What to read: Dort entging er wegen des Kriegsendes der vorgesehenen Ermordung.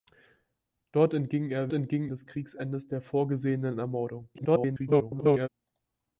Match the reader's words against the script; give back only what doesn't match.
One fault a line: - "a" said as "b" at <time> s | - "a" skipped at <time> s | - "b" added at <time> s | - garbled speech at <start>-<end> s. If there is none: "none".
- "wegen" said as "entging" at 1.7 s
- garbled speech at 4.3-5.5 s